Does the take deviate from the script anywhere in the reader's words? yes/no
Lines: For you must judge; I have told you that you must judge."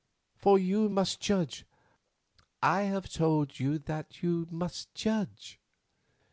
no